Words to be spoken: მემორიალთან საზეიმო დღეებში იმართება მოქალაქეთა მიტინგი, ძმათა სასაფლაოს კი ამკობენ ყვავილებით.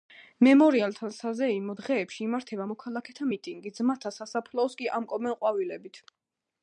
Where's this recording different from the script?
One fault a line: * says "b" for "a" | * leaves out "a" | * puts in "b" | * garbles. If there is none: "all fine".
all fine